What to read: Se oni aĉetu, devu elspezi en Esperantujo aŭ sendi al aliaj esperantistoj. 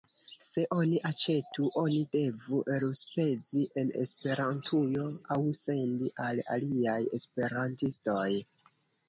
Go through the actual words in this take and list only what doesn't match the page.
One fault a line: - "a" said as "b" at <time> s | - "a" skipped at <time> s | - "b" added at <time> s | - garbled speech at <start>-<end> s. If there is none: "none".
- "oni" added at 1.8 s